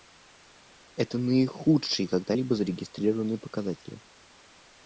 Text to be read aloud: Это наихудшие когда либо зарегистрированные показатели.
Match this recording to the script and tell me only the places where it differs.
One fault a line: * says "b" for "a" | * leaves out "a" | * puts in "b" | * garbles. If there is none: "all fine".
all fine